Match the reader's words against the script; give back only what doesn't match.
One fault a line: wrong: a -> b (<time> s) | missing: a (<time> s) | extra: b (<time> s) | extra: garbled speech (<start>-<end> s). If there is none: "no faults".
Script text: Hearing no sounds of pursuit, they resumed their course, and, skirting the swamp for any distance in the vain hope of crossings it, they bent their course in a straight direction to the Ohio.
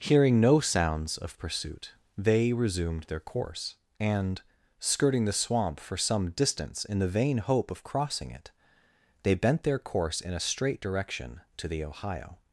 wrong: any -> some (6.0 s)
wrong: crossings -> crossing (7.8 s)